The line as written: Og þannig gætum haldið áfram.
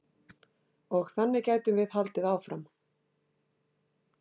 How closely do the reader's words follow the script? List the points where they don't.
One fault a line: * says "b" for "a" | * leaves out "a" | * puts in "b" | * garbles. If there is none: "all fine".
* puts in "við"